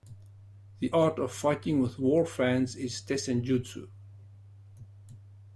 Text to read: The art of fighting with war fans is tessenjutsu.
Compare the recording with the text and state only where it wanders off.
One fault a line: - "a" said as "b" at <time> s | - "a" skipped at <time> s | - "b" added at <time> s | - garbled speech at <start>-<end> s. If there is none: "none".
none